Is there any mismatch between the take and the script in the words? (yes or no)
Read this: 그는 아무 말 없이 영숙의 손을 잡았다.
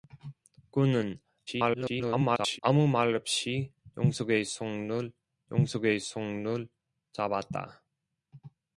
yes